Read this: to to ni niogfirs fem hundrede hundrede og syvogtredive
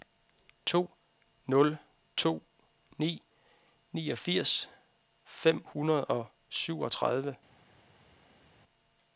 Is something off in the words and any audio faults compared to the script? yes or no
yes